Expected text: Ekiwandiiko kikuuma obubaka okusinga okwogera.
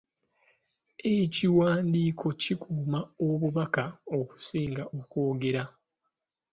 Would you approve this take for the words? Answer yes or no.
yes